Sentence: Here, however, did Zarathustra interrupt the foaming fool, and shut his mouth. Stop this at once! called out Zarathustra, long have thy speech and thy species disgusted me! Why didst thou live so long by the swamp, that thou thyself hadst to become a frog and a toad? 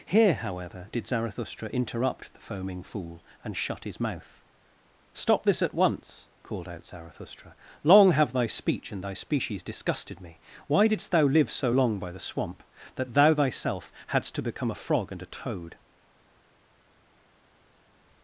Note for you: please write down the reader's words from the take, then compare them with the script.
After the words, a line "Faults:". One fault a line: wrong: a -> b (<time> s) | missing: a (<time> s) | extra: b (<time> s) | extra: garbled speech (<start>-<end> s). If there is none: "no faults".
Here, however, did Zarathustra interrupt the foaming fool, and shut his mouth. Stop this at once! called out Zarathustra, long have thy speech and thy species disgusted me! Why didst thou live so long by the swamp, that thou thyself hadst to become a frog and a toad?
Faults:
no faults